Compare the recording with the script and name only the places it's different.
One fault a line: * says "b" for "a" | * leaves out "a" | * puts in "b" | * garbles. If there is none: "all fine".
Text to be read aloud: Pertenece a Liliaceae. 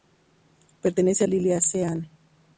all fine